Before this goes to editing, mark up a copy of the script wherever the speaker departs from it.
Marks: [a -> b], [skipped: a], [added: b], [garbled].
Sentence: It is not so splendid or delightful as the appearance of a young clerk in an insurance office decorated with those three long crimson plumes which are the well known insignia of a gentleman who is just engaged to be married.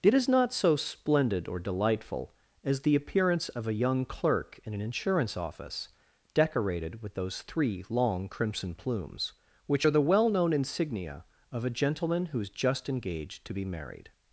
It is not so splendid or delightful as the appearance of a young clerk in an insurance office decorated with those three long crimson plumes which are the well known insignia of a gentleman who is just engaged to be married.